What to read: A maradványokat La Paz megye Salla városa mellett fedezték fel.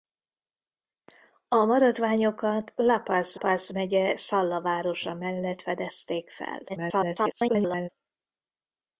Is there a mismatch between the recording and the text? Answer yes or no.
yes